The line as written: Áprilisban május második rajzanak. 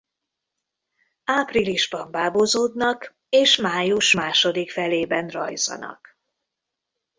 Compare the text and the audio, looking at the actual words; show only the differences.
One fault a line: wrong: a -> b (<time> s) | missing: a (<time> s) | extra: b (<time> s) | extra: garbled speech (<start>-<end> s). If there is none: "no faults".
extra: bábozódnak és (2.1 s)
extra: felében (4.7 s)